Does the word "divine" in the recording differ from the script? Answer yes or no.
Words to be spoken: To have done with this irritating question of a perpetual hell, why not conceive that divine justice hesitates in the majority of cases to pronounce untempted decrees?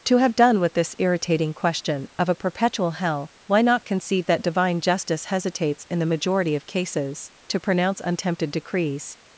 no